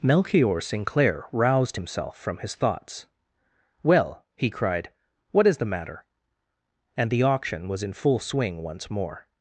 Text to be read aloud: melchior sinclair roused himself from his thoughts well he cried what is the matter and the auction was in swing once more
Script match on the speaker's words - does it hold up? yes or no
no